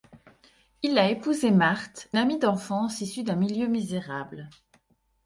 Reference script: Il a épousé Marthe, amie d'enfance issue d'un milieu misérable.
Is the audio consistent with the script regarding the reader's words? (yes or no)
yes